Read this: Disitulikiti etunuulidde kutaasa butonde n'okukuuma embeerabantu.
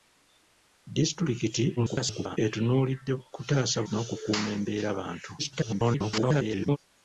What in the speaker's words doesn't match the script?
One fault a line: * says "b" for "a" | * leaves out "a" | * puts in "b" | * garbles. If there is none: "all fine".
* garbles
* leaves out "butonde"
* garbles